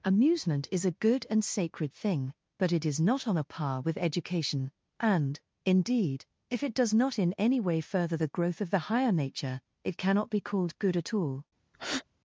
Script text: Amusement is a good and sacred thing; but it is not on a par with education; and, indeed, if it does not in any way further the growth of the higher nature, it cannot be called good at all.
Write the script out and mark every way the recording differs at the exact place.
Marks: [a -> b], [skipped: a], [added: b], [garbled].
Amusement is a good and sacred thing; but it is not on a par with education; and, indeed, if it does not in any way further the growth of the higher nature, it cannot be called good at all.